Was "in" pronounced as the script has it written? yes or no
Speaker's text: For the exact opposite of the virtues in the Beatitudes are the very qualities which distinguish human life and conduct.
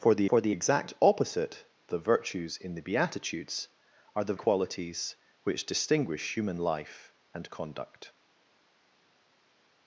yes